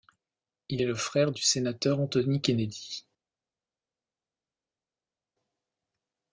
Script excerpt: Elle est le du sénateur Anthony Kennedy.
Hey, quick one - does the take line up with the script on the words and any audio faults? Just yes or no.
no